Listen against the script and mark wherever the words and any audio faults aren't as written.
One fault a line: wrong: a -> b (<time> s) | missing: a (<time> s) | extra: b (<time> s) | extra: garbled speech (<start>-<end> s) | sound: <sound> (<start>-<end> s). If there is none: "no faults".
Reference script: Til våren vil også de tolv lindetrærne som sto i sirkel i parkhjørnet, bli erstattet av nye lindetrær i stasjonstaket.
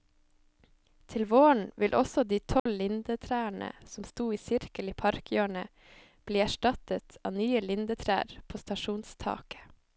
sound: dropout (2.6-2.7 s)
wrong: i -> på (8.5 s)